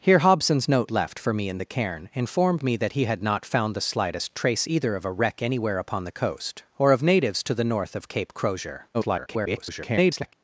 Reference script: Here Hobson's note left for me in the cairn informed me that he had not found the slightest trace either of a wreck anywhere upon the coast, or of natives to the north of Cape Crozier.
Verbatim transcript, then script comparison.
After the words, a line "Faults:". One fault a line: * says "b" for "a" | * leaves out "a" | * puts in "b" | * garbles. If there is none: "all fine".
Here Hobson's note left for me in the cairn informed me that he had not found the slightest trace either of a wreck anywhere upon the coast, or of natives to the north of Cape Crozier. [garbled]
Faults:
* garbles